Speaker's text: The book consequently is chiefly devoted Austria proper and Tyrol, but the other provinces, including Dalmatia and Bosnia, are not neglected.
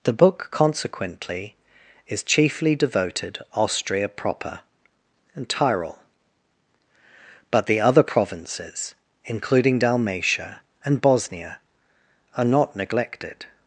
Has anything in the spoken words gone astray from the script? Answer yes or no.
no